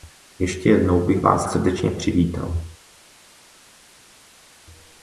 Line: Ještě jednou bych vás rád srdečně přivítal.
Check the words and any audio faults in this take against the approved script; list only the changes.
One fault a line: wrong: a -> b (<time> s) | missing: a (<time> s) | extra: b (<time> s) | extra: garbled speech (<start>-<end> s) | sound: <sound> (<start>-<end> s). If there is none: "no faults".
missing: rád (1.5 s)